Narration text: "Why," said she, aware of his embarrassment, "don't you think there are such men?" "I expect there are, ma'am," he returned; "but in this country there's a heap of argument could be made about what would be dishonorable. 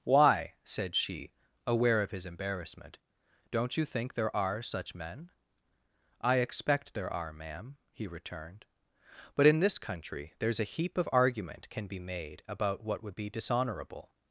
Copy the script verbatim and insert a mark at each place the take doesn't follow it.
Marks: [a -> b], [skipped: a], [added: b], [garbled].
"Why," said she, aware of his embarrassment, "don't you think there are such men?" "I expect there are, ma'am," he returned; "but in this country there's a heap of argument [could -> can] be made about what would be dishonorable.